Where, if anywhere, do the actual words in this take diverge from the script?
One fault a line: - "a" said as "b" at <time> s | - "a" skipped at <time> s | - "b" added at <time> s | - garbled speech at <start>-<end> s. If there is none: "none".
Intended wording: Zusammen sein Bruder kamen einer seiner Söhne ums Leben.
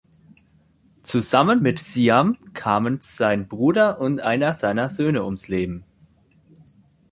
- "mit Siam kamen" added at 1.6 s
- "kamen" said as "und" at 4.0 s